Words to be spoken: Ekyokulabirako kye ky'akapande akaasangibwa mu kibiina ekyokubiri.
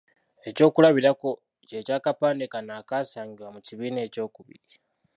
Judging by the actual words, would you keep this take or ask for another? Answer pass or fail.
fail